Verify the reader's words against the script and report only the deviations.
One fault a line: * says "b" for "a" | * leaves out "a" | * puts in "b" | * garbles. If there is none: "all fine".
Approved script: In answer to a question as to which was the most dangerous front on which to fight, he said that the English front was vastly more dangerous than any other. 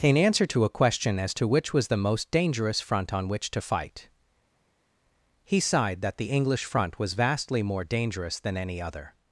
* says "sighed" for "said"